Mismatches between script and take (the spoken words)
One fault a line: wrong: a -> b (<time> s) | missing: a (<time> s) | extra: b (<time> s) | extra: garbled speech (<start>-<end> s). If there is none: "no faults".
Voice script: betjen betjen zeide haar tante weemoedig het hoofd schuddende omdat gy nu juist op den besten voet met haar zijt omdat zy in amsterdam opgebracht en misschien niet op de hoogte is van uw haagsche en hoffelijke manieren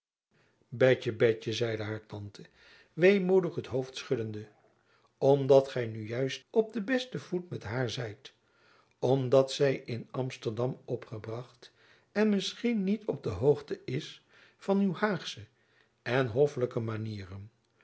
no faults